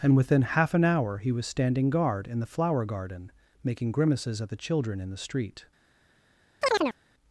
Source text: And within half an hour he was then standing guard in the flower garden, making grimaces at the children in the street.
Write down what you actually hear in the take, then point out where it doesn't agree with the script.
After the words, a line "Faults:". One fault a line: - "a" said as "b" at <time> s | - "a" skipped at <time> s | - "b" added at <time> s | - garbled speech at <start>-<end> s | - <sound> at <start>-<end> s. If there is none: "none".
And within half an hour he was standing guard in the flower garden, making grimaces at the children in the street.
Faults:
- "then" skipped at 1.4 s
- chirp at 6.6-7.0 s